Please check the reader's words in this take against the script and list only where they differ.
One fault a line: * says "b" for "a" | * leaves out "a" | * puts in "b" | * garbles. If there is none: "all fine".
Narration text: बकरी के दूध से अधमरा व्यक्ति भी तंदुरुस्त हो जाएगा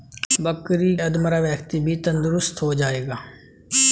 * leaves out "के दूध से"